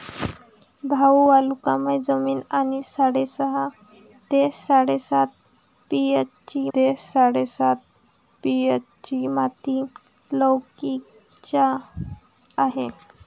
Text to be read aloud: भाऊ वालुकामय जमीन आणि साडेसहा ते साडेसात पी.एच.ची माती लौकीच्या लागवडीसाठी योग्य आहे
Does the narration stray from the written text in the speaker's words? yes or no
yes